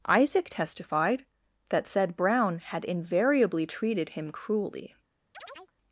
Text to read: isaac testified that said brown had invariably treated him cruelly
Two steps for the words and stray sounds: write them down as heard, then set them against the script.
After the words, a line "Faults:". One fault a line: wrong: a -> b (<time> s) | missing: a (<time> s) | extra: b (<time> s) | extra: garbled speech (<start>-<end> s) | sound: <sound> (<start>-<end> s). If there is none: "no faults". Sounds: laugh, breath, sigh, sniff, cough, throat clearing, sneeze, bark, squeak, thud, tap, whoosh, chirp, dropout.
isaac testified that said brown had invariably treated him cruelly
Faults:
sound: chirp (5.3-5.7 s)